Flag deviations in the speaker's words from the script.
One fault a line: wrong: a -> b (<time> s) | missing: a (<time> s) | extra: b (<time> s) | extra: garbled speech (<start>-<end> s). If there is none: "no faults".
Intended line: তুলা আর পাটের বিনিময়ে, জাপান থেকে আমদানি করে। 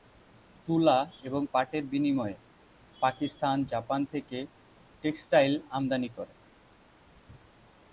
wrong: আর -> এবং (1.2 s)
extra: পাকিস্তান (3.0 s)
extra: টেক্সটাইল (5.0 s)